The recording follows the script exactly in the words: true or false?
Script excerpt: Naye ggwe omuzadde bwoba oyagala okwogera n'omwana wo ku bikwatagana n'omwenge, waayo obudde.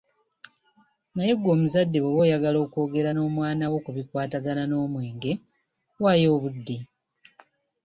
true